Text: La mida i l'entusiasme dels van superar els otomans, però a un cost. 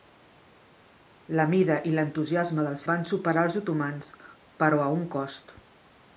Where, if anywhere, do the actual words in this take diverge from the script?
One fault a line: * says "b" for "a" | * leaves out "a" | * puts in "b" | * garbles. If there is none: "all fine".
all fine